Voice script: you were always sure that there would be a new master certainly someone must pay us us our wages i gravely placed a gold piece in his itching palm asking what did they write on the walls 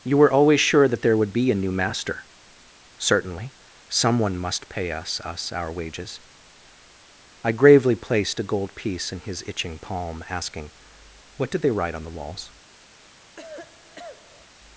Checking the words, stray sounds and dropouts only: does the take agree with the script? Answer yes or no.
no